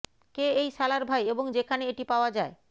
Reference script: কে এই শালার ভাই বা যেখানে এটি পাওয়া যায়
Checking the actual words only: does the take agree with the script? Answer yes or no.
no